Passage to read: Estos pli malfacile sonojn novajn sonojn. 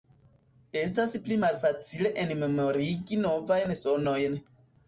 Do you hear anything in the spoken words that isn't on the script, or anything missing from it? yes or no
yes